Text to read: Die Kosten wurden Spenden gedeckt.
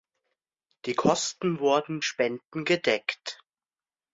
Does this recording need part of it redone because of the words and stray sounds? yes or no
no